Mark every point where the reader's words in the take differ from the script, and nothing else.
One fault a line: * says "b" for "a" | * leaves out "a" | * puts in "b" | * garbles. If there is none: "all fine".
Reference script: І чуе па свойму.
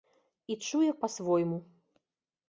all fine